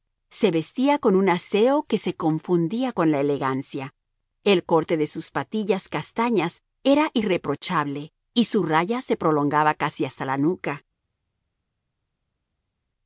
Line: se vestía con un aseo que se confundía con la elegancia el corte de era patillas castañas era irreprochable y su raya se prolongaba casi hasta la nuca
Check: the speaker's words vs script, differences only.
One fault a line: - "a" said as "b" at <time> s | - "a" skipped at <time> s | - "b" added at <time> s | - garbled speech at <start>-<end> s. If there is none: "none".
- "era" said as "sus" at 5.1 s